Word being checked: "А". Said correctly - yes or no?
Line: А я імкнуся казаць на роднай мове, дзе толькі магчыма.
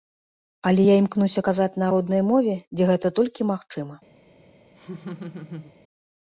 no